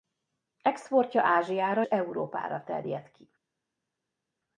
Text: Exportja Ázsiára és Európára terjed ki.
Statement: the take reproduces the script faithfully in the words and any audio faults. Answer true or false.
false